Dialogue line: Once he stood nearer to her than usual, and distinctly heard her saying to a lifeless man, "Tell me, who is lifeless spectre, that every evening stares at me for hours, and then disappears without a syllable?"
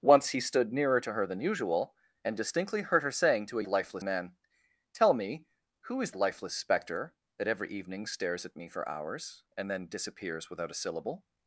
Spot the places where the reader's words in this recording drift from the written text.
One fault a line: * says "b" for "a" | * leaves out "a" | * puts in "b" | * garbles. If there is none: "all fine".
all fine